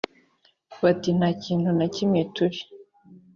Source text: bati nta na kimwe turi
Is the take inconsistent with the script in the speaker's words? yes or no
yes